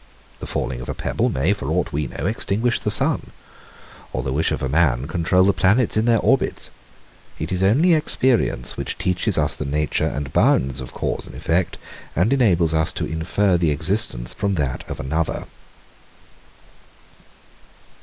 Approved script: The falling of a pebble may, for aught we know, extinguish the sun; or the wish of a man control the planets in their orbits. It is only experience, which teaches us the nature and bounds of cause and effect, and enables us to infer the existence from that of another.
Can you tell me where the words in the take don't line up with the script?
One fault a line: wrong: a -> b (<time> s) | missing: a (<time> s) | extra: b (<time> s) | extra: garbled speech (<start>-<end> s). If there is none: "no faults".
no faults